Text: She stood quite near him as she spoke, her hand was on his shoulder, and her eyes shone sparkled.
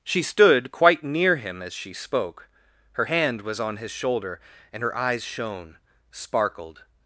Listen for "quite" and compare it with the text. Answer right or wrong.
right